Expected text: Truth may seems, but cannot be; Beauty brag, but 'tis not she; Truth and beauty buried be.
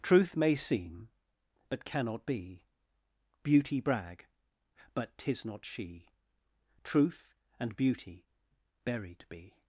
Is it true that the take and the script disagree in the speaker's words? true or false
true